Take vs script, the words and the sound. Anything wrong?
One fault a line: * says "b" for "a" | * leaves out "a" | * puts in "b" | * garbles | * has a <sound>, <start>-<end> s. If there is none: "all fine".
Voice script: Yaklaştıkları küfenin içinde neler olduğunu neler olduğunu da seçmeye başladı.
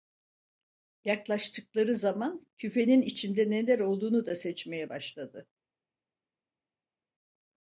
* puts in "zaman"
* leaves out "neler olduğunu"